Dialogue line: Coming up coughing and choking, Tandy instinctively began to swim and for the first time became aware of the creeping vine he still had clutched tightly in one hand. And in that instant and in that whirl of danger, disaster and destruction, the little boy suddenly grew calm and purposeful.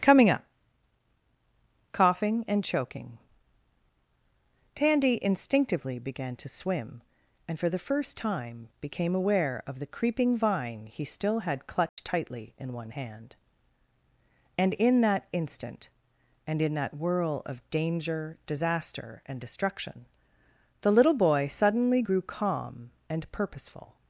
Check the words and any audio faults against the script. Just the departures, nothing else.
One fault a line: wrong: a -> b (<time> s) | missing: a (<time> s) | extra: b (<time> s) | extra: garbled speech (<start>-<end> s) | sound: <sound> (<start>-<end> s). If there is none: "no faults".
sound: dropout (11.9-12.0 s)